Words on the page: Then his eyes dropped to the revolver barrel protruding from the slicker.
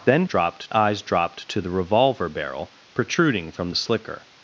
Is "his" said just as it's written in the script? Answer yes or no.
no